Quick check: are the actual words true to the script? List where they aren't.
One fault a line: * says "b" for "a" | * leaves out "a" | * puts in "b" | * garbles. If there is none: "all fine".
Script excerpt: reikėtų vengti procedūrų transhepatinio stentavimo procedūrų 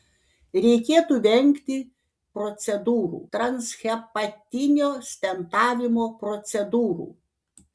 all fine